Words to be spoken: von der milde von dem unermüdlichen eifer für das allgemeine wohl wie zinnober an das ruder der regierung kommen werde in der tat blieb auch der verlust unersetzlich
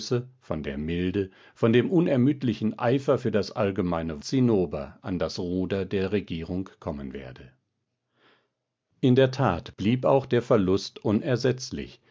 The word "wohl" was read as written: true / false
false